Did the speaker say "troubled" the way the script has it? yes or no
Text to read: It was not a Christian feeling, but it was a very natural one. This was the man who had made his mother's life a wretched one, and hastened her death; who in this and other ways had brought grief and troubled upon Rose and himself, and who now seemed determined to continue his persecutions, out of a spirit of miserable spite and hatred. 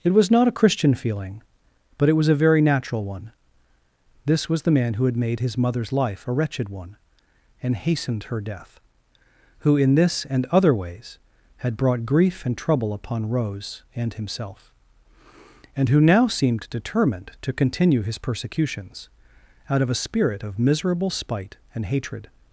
no